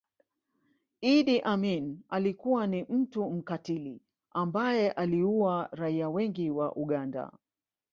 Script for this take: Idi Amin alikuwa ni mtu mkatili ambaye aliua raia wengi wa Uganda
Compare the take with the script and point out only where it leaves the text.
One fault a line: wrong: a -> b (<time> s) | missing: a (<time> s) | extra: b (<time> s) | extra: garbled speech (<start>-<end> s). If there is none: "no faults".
no faults